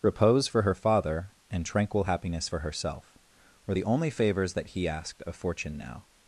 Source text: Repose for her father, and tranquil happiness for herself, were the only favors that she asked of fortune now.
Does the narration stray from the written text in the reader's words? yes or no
yes